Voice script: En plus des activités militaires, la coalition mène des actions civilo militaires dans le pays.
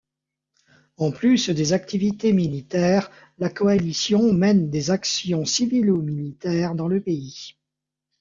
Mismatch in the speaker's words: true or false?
false